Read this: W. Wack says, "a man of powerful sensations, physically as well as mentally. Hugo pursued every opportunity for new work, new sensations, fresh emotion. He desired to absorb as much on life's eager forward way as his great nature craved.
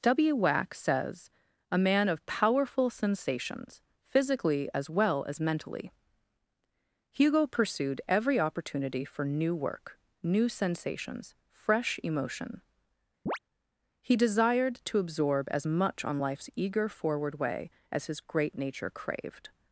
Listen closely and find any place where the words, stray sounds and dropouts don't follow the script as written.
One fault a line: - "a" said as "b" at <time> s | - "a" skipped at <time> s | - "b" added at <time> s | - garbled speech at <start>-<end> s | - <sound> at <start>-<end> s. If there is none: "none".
- chirp at 13.3-13.4 s